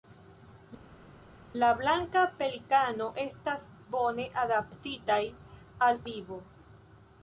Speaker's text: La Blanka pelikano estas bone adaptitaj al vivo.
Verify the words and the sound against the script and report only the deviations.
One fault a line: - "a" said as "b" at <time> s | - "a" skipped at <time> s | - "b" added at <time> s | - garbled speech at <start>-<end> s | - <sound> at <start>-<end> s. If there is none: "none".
none